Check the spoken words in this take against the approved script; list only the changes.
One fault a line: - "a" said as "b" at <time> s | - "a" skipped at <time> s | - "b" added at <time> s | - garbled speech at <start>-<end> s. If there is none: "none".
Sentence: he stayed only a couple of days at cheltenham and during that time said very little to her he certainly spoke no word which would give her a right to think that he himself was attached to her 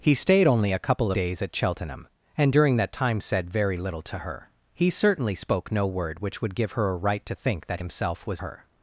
- "of" skipped at 1.1 s
- "he" skipped at 7.8 s
- "attached to" skipped at 8.4 s